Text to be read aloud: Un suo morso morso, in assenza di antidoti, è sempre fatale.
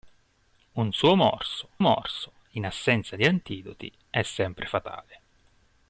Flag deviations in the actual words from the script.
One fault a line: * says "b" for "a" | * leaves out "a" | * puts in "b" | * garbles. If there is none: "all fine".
all fine